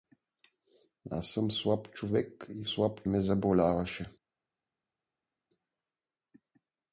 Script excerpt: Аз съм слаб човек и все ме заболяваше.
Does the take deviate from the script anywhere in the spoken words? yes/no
yes